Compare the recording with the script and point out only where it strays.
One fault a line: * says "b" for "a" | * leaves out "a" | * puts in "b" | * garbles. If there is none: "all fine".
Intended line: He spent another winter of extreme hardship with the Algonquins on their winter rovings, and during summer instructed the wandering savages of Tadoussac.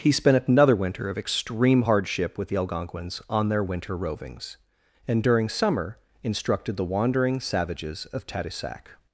all fine